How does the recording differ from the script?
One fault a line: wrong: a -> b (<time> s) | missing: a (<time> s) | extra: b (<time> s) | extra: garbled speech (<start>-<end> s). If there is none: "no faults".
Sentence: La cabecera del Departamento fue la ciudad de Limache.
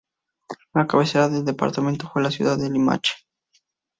no faults